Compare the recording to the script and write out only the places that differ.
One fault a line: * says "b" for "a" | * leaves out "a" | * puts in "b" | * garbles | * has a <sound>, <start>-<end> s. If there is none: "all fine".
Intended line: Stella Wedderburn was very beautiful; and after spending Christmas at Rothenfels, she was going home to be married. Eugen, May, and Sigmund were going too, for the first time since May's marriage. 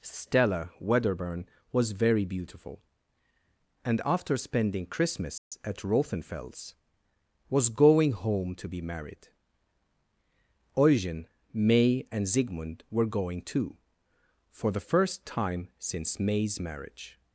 * has a dropout, 5.4-5.5 s
* leaves out "she"